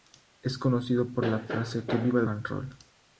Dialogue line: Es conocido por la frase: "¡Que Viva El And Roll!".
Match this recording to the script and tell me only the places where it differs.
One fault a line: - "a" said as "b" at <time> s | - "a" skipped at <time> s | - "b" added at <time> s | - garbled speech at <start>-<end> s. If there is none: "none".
none